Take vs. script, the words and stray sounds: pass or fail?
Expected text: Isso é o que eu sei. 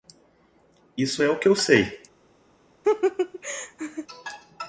fail